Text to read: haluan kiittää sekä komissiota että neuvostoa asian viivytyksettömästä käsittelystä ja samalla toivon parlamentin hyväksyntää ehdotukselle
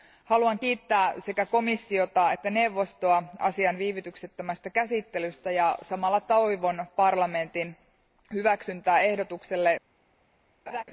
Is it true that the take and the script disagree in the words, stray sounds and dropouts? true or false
true